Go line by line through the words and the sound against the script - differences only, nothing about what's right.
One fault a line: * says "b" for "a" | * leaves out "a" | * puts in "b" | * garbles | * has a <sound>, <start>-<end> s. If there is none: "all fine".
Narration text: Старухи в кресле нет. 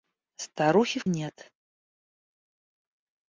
* leaves out "кресле"